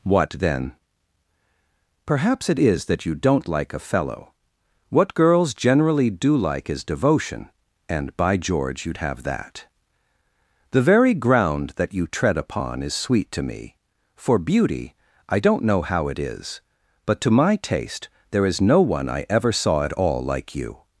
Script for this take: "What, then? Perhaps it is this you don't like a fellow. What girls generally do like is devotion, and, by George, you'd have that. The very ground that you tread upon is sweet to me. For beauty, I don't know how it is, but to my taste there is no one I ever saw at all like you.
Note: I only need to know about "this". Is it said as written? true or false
false